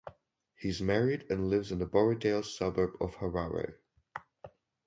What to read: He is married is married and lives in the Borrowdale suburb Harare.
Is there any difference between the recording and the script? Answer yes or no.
yes